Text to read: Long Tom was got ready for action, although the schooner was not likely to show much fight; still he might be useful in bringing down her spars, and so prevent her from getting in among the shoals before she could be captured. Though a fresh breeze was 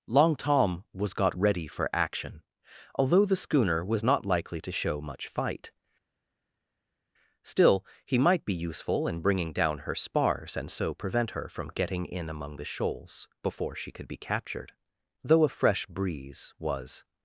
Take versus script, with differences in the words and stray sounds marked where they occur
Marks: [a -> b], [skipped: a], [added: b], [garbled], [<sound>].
Long Tom was got ready for action, although the schooner was not likely to show much fight; still he might be useful in bringing down her spars, and so prevent her from getting in among the shoals before she could be captured. Though a fresh breeze was